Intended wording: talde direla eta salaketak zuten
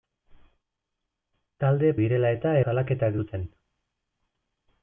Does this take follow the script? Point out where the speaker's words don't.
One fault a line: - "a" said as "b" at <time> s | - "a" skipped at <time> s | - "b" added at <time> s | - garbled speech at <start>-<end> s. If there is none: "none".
none